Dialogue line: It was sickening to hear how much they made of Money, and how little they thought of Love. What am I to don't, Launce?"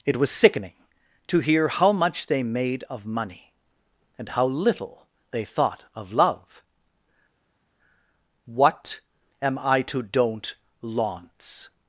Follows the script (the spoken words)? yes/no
yes